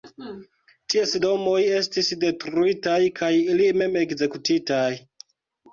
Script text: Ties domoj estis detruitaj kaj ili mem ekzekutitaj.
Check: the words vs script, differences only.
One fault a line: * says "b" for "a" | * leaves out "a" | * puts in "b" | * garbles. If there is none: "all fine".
all fine